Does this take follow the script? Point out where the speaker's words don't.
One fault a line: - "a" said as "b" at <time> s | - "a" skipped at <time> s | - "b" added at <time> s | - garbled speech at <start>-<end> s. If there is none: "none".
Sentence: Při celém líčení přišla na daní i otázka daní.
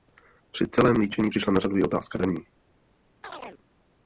- "daní" said as "řadu" at 1.6 s